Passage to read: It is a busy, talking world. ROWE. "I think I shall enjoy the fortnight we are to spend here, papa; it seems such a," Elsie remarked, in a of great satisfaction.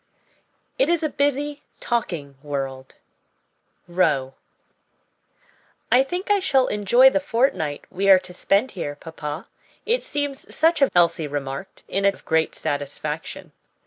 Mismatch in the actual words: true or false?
false